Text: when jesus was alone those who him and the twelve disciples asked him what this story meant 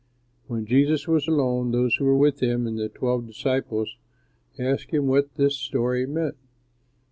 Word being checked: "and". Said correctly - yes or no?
yes